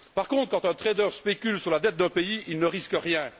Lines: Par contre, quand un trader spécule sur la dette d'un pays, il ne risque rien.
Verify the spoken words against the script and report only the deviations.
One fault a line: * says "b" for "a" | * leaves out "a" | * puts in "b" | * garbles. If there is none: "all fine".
all fine